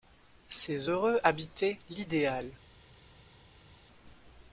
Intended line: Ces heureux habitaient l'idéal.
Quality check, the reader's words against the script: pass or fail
pass